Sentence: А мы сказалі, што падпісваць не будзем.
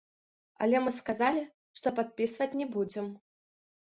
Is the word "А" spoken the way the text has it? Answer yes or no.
no